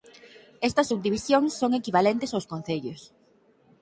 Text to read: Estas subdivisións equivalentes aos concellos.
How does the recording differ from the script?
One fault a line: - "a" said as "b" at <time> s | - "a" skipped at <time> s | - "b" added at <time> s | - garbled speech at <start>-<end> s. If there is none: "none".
- "son" added at 1.6 s